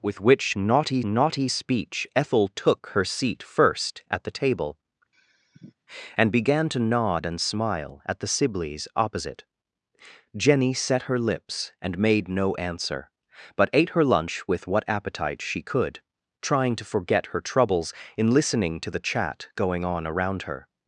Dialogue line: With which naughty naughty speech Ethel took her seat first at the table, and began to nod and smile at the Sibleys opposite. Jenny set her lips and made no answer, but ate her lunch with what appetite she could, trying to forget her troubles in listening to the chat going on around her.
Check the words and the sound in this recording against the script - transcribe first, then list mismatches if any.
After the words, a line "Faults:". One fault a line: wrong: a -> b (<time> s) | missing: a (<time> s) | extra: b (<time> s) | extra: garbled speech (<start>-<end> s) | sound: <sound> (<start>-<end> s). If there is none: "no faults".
With which naughty naughty speech Ethel took her seat first at the table, and began to nod and smile at the Sibleys opposite. Jenny set her lips and made no answer, but ate her lunch with what appetite she could, trying to forget her troubles in listening to the chat going on around her.
Faults:
sound: sigh (5.1-5.7 s)